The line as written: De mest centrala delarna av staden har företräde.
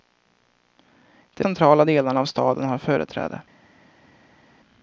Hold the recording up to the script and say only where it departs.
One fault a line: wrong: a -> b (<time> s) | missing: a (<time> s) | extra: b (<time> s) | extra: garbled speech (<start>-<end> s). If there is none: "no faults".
missing: mest (1.4 s)